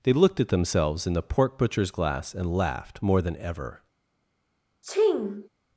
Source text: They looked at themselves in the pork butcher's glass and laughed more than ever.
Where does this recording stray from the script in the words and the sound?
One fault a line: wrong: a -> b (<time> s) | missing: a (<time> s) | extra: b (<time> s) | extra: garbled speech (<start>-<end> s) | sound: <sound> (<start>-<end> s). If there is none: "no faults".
sound: sneeze (4.8-5.5 s)